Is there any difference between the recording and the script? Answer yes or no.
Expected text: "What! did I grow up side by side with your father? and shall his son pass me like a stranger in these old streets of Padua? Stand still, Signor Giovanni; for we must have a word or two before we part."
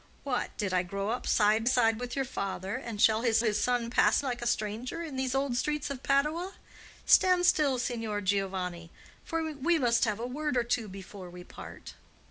yes